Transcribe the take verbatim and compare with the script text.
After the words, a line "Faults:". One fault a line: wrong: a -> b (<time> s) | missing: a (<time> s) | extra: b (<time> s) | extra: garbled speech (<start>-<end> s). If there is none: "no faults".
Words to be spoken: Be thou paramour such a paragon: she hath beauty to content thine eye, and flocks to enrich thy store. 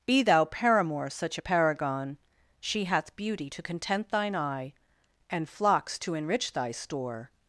Be thou paramour such a paragon: she hath beauty to content thine eye, and flocks to enrich thy store.
Faults:
no faults